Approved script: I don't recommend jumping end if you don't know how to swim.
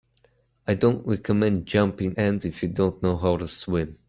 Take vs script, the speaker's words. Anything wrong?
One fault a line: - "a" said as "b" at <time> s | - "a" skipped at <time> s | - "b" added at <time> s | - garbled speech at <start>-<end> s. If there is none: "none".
none